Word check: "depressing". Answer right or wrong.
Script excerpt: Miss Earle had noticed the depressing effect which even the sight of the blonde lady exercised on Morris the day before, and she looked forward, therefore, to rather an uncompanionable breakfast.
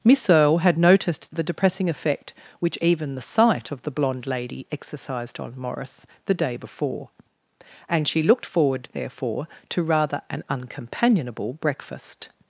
right